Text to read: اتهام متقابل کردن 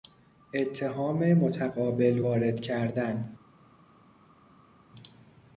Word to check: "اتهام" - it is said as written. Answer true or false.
true